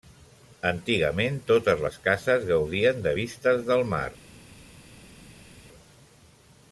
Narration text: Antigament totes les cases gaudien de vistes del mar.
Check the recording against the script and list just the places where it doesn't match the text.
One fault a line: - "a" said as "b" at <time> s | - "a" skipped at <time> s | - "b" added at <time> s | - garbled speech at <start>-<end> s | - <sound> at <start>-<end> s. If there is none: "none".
none